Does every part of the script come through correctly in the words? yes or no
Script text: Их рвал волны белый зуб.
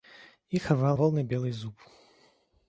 yes